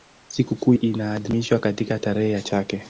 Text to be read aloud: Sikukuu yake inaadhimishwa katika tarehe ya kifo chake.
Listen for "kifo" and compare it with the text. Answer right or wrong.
wrong